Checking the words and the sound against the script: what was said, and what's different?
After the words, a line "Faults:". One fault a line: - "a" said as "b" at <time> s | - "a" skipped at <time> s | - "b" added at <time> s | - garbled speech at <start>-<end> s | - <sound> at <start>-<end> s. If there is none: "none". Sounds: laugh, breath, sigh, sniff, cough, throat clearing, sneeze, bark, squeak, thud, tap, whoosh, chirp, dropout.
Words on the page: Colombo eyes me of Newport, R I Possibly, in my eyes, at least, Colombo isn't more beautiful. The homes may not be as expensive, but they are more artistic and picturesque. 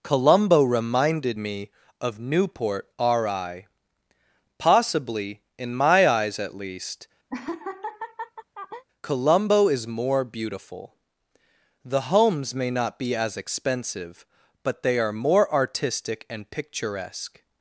Colombo reminded me of Newport, R I Possibly, in my eyes, at least, Colombo is more beautiful. The homes may not be as expensive, but they are more artistic and picturesque.
Faults:
- "eyes" said as "reminded" at 0.6 s
- laugh at 7.3-8.8 s
- "isn't" said as "is" at 9.7 s